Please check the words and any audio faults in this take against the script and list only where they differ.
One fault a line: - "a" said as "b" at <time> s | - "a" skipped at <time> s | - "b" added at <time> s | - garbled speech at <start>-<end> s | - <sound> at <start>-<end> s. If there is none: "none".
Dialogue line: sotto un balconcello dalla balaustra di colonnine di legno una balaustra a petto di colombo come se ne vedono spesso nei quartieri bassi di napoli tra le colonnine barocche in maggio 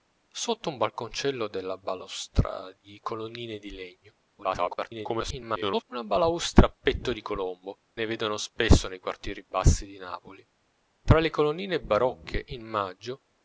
- garbled speech at 4.4-5.8 s
- "come se" skipped at 7.8 s